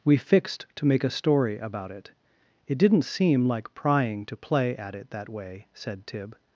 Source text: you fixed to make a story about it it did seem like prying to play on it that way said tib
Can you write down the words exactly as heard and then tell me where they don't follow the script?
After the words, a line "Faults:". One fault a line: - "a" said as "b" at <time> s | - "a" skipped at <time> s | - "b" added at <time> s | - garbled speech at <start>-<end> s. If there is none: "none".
we fixed to make a story about it it didn't seem like prying to play at it that way said tib
Faults:
- "you" said as "we" at 0.0 s
- "did" said as "didn't" at 2.8 s
- "on" said as "at" at 4.8 s